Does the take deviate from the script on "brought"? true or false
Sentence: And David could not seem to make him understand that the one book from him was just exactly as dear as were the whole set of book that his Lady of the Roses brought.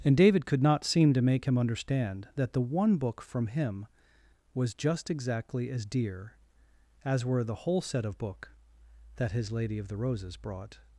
false